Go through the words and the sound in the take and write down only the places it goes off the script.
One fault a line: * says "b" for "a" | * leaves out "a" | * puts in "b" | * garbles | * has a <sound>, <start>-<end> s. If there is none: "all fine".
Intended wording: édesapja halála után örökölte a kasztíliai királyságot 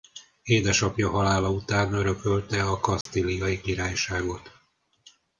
* has a dropout, 3.0-3.1 s